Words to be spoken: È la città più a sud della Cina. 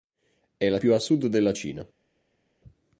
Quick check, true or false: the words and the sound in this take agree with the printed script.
false